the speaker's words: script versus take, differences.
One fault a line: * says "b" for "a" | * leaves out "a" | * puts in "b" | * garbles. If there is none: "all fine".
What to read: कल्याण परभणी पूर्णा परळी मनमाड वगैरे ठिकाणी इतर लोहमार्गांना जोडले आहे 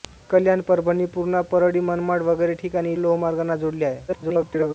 * leaves out "इतर"
* garbles